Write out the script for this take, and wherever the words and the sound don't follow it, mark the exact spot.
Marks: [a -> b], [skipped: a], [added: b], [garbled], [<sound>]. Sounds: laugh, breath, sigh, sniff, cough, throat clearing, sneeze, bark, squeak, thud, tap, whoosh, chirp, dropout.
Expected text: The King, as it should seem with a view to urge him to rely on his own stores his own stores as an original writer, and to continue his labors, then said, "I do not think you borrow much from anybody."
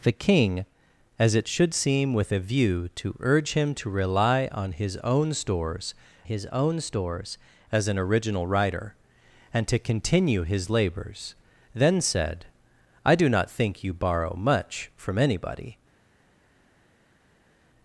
The King, as it should seem with a view to urge him to rely on his own stores his own stores as an original writer, and to continue his labors, then said, "I do not think you borrow much from anybody."